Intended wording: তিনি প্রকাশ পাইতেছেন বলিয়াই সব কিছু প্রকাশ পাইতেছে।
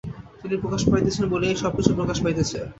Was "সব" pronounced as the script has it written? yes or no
yes